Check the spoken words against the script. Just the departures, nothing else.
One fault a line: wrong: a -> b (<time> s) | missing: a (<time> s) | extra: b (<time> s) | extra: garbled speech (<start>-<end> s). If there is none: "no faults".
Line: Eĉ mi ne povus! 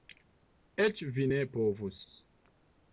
wrong: mi -> vi (1.2 s)